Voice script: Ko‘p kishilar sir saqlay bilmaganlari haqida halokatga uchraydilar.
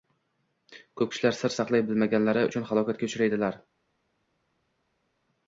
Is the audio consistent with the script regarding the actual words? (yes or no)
no